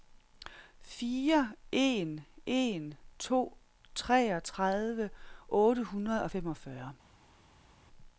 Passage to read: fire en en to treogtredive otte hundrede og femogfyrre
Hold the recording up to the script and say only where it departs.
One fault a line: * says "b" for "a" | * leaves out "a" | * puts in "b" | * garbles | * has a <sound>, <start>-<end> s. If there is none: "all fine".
all fine